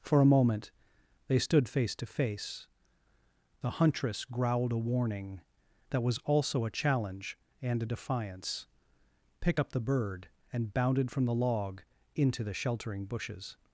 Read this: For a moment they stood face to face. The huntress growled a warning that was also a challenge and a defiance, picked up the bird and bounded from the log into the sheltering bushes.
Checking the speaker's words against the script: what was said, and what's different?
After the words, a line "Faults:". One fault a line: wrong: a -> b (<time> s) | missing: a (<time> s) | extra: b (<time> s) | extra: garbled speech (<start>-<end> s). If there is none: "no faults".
For a moment they stood face to face. The huntress growled a warning that was also a challenge and a defiance, pick up the bird and bounded from the log into the sheltering bushes.
Faults:
wrong: picked -> pick (9.4 s)